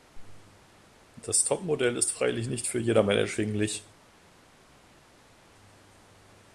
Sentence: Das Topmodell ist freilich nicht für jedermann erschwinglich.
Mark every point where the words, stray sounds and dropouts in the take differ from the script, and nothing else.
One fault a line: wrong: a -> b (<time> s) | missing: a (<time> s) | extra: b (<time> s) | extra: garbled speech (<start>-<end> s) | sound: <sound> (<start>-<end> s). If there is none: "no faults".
no faults